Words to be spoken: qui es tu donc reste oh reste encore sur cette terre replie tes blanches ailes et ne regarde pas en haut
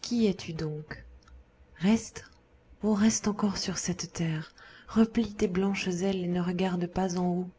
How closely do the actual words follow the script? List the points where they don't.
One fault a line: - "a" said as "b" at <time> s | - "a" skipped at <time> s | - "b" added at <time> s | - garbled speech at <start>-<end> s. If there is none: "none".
none